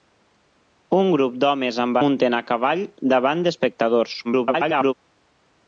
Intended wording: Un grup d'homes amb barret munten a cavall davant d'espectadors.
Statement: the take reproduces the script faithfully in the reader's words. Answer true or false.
false